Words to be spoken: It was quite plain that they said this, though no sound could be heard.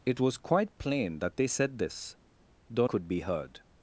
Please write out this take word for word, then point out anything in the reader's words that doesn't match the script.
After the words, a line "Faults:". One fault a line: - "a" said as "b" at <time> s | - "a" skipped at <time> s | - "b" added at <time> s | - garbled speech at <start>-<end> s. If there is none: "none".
It was quite plain that they said this, though could be heard.
Faults:
- "no sound" skipped at 2.9 s